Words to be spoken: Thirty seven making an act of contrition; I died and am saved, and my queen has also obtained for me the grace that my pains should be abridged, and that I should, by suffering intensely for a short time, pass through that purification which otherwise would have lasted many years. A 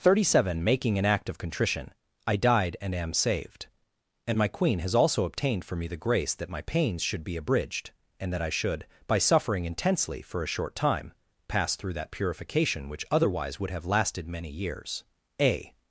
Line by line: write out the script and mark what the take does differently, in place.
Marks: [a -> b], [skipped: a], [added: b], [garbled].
Thirty seven making an act of contrition; I died and am saved, and my queen has also obtained for me the grace that my pains should be abridged, and that I should, by suffering intensely for a short time, pass through that purification which otherwise would have lasted many years. A